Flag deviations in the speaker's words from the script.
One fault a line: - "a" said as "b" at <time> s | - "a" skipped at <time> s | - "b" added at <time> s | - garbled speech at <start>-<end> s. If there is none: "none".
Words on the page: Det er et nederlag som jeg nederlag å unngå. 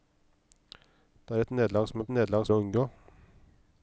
none